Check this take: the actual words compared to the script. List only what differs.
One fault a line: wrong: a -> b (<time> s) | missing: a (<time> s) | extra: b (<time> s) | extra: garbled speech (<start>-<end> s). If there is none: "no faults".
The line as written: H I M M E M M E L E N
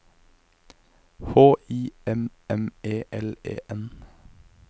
missing: M M E (3.0 s)